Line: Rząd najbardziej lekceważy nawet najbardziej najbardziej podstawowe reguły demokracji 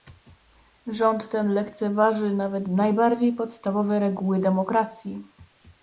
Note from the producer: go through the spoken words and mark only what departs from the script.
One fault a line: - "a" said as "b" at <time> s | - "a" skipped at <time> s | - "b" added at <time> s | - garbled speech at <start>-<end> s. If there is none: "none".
- "najbardziej" said as "ten" at 1.3 s
- "najbardziej" skipped at 3.3 s